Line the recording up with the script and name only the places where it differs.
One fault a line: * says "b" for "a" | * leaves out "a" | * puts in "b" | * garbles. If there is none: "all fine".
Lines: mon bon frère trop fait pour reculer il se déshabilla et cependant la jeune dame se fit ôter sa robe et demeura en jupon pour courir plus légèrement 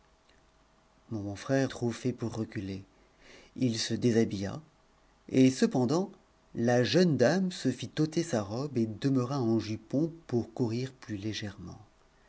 all fine